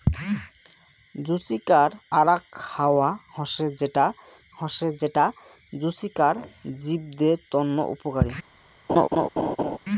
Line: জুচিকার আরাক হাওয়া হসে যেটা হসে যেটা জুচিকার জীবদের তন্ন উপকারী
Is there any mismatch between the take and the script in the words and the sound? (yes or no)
yes